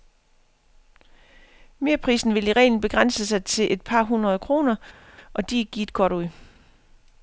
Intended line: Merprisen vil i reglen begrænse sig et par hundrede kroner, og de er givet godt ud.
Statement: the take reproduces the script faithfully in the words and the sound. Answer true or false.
false